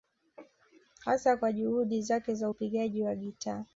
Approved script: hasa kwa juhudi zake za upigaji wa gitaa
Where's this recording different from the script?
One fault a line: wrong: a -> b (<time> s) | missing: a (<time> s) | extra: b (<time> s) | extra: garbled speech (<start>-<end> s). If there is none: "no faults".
no faults